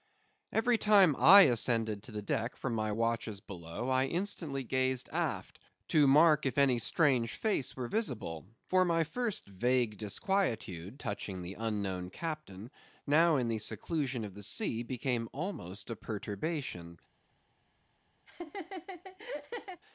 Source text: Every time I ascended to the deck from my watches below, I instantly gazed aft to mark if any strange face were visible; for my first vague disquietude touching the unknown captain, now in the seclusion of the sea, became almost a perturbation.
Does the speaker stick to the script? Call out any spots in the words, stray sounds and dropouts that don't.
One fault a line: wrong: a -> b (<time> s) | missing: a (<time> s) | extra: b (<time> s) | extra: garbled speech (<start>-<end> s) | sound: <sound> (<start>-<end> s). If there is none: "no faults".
sound: laugh (18.3-19.8 s)